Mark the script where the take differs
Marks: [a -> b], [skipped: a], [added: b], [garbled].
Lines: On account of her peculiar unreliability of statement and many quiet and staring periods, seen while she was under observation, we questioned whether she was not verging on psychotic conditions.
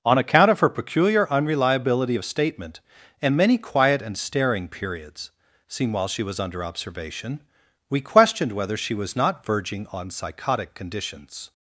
On account of her peculiar unreliability of statement and many quiet and staring periods, seen while she was under observation, we questioned whether she was not verging on psychotic conditions.